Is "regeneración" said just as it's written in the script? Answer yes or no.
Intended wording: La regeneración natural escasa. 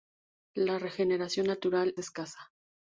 yes